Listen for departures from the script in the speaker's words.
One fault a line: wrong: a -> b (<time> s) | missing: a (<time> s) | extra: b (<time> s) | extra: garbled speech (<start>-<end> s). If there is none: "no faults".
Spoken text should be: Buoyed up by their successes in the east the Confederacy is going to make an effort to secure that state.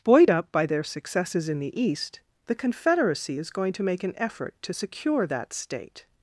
no faults